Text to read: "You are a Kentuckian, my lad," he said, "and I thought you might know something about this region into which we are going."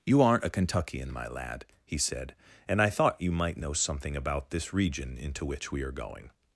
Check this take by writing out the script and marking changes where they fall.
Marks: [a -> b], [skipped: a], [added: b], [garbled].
"You [are -> aren't] a Kentuckian, my lad," he said, "and I thought you might know something about this region into which we are going."